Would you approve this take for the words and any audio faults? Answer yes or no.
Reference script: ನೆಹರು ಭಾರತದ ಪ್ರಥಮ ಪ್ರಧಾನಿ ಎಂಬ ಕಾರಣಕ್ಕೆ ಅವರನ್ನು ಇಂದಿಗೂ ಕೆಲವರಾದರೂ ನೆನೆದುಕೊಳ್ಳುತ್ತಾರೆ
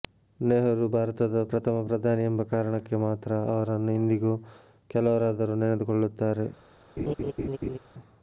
no